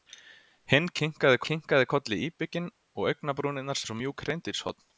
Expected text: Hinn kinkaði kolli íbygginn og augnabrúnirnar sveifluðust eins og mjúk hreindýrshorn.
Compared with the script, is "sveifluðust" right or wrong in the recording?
wrong